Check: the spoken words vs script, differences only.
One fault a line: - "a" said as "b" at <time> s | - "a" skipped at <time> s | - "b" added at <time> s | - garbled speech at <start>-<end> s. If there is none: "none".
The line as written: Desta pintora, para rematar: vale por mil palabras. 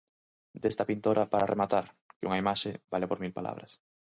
- "que unha imaxe" added at 2.2 s